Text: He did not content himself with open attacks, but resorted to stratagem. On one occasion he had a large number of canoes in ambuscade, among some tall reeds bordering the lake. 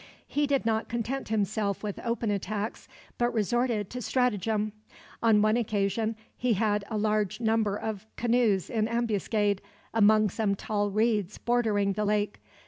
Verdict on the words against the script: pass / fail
pass